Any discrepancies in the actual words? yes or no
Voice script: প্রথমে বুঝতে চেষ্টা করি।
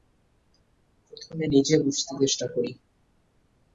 yes